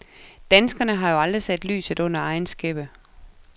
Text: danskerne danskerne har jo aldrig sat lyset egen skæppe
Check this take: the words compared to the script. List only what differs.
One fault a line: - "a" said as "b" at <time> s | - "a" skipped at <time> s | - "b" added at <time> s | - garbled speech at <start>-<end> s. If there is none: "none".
- "danskerne" skipped at 0.9 s
- "under" added at 2.0 s